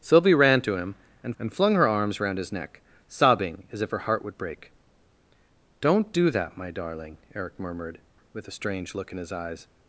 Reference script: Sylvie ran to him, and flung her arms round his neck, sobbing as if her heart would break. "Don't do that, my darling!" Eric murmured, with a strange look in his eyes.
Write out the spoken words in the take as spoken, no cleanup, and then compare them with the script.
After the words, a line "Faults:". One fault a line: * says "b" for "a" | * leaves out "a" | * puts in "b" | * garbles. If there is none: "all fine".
Sylvie ran to him, and and flung her arms round his neck, sobbing as if her heart would break. "Don't do that, my darling!" Eric murmured, with a strange look in his eyes.
Faults:
* puts in "and"